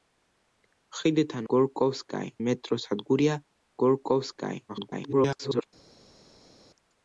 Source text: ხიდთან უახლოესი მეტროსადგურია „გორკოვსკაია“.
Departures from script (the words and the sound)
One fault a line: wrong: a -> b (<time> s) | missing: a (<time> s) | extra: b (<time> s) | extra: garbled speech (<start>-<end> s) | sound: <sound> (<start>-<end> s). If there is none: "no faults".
wrong: უახლოესი -> გორკოვსკაია (1.5 s)
extra: garbled speech (4.7-5.7 s)